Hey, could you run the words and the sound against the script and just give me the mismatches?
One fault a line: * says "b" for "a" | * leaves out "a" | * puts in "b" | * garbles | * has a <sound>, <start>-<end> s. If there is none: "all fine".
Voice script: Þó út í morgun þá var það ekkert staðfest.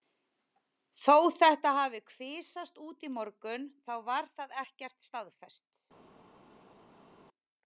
* puts in "þetta hafi kvisast"